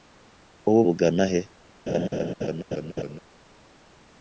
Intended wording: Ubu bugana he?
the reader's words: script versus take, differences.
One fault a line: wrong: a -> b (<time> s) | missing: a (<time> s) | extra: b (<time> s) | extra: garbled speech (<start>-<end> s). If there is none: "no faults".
no faults